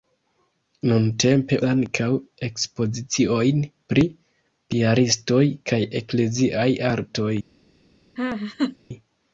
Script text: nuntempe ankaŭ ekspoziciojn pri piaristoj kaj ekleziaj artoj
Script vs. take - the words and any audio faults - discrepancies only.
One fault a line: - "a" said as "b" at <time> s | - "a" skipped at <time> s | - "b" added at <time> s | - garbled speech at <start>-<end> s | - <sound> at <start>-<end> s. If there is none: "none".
- laugh at 8.2-8.8 s